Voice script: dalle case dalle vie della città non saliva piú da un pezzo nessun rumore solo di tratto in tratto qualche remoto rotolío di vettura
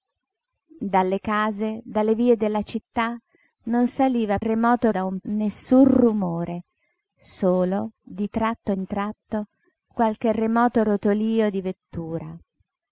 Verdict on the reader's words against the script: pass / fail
fail